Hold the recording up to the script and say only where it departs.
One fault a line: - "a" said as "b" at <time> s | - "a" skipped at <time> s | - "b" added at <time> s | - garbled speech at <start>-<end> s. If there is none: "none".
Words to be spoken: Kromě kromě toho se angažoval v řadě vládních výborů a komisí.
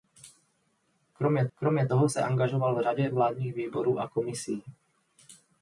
none